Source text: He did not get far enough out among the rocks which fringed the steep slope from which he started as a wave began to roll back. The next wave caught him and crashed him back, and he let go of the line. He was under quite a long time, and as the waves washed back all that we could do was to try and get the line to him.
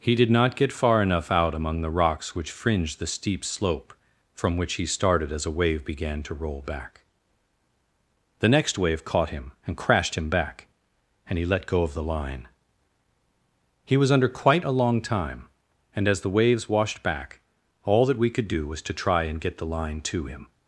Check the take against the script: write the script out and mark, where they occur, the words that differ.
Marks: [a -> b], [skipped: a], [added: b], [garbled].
He did not get far enough out among the rocks which fringed the steep slope from which he started as a wave began to roll back. The next wave caught him and crashed him back, and he let go of the line. He was under quite a long time, and as the waves washed back all that we could do was to try and get the line to him.